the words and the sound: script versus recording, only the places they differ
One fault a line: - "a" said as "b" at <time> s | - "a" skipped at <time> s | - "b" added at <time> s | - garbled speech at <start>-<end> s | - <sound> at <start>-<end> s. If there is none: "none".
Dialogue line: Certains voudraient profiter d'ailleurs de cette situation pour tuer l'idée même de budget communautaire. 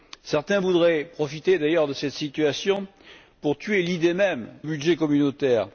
- "de" skipped at 4.5 s